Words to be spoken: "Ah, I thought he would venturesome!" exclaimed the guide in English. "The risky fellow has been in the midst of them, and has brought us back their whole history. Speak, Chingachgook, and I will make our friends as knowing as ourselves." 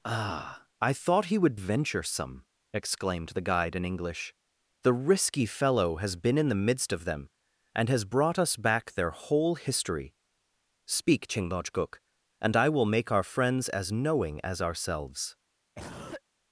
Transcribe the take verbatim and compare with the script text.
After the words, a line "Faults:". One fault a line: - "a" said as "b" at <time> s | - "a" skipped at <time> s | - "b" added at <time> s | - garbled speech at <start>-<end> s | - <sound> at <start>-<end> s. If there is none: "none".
"Ah, I thought he would venturesome!" exclaimed the guide in English. "The risky fellow has been in the midst of them, and has brought us back their whole history. Speak, Chingachgook, and I will make our friends as knowing as ourselves."
Faults:
- cough at 15.7-16.2 s